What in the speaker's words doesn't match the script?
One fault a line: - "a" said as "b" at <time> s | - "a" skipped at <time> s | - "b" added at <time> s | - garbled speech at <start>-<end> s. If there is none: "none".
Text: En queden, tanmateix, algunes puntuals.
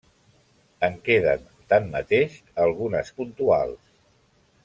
none